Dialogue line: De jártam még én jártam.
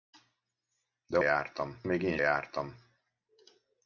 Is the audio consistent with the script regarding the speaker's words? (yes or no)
yes